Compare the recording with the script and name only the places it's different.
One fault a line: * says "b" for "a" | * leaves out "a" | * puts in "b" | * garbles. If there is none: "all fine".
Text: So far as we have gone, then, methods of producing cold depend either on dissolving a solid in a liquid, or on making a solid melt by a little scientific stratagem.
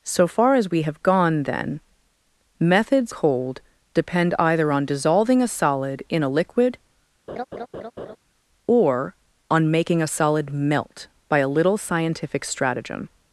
* leaves out "of producing"